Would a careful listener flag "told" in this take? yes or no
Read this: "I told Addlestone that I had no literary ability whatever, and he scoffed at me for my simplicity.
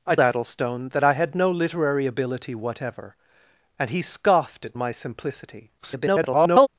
yes